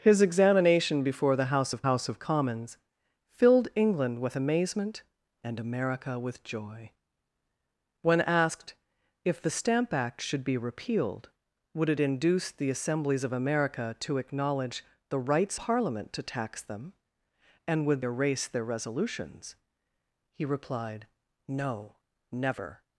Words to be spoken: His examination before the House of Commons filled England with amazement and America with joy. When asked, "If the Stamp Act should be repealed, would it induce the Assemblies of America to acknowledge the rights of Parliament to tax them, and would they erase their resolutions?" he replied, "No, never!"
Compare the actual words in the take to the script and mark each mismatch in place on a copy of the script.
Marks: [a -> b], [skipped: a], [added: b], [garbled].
His examination before the House of [added: House of] Commons filled England with amazement and America with joy. When asked, "If the Stamp Act should be repealed, would it induce the Assemblies of America to acknowledge the rights [skipped: of] Parliament to tax them, and would [skipped: they] erase their resolutions?" he replied, "No, never!"